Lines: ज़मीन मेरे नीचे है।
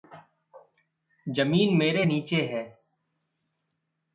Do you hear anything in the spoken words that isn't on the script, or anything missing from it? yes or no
no